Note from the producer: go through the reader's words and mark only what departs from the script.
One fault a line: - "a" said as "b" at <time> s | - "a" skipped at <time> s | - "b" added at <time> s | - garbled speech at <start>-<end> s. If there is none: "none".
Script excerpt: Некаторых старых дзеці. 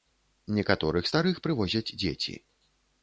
- "прывозяць" added at 1.5 s